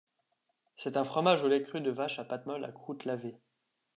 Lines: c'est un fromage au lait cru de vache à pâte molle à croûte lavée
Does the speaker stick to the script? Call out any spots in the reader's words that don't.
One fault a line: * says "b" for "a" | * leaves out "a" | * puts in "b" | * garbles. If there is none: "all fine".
all fine